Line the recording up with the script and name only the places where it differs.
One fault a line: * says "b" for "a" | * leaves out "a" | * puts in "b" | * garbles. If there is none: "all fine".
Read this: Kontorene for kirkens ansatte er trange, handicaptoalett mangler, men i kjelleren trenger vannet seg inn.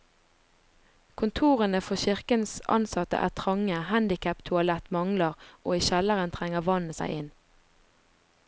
* says "og" for "men"